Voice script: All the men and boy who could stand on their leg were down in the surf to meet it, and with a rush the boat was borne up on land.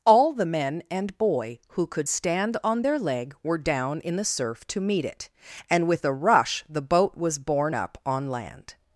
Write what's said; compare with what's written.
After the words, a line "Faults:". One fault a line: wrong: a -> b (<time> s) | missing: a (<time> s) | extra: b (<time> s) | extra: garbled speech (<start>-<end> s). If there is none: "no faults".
All the men and boy who could stand on their leg were down in the surf to meet it, and with a rush the boat was borne up on land.
Faults:
no faults